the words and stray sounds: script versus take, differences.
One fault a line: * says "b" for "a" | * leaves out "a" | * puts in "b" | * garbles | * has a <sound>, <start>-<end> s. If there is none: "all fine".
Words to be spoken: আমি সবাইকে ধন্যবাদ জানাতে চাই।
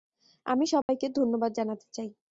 * has a dropout, 0.8-0.9 s